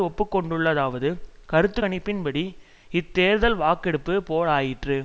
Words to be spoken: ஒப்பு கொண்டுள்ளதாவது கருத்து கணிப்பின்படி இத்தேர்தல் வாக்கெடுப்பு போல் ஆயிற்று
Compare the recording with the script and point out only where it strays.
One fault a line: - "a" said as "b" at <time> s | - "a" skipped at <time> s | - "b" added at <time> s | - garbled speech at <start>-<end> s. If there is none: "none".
none